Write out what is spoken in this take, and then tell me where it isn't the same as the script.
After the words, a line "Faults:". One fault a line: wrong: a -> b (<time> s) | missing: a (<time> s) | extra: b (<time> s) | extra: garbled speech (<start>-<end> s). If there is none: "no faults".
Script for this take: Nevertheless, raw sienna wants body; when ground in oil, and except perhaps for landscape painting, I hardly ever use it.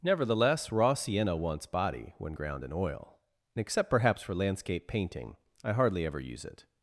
Nevertheless, raw sienna wants body; when ground in oil, and except perhaps for landscape painting, I hardly ever use it.
Faults:
no faults